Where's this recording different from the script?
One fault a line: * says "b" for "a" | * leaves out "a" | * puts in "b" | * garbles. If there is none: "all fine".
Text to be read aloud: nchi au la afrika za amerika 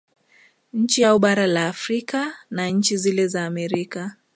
* puts in "bara"
* puts in "na nchi zile"